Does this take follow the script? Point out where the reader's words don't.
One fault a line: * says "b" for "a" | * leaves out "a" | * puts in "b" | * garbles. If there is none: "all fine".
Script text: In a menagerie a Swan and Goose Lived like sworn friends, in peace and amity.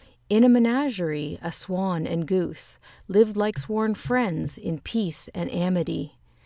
all fine